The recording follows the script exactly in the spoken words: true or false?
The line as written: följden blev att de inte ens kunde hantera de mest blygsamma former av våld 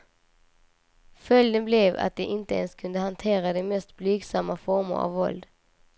true